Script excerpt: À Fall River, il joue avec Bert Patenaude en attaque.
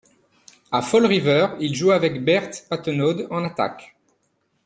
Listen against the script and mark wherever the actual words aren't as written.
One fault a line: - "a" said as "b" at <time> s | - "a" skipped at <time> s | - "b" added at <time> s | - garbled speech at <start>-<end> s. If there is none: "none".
none